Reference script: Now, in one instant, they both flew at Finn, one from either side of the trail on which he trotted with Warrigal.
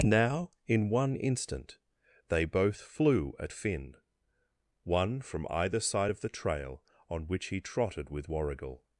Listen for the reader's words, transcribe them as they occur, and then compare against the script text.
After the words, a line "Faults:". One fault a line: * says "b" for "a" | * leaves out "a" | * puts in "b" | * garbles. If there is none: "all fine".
Now, in one instant, they both flew at Finn, one from either side of the trail on which he trotted with Warrigal.
Faults:
all fine